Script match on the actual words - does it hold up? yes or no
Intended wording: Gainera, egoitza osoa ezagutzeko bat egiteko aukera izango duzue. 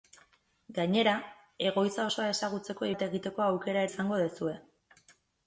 yes